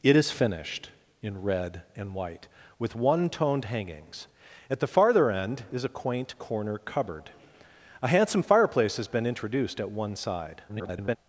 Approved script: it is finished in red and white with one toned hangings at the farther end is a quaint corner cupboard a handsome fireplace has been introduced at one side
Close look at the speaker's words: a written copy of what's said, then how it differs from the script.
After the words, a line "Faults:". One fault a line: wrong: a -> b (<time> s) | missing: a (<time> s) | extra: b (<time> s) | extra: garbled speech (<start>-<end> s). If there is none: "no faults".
it is finished in red and white with one toned hangings at the farther end is a quaint corner cupboard a handsome fireplace has been introduced at one side [garbled]
Faults:
extra: garbled speech (10.7-11.2 s)